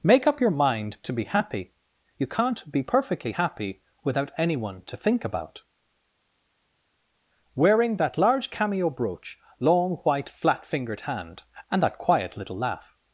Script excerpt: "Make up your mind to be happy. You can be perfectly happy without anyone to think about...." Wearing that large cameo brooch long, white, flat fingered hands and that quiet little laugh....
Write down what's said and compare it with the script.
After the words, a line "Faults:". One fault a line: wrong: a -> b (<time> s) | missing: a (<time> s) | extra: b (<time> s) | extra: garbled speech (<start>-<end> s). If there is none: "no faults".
"Make up your mind to be happy. You can't be perfectly happy without anyone to think about...." Wearing that large cameo brooch long, white, flat fingered hand and that quiet little laugh....
Faults:
wrong: can -> can't (2.2 s)
wrong: hands -> hand (11.0 s)